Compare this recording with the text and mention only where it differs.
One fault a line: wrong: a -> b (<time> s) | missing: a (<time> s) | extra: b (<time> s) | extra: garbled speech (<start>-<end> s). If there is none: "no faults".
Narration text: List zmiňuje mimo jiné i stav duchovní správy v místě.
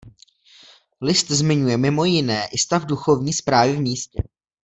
no faults